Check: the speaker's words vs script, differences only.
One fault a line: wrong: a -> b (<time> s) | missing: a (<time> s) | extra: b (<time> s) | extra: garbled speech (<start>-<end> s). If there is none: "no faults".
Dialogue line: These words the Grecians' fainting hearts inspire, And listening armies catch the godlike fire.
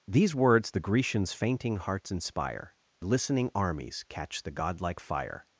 missing: And (2.8 s)